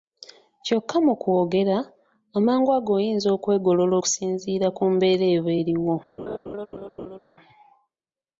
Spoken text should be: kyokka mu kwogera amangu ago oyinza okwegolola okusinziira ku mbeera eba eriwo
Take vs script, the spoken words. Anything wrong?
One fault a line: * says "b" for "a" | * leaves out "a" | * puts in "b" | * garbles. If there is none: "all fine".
all fine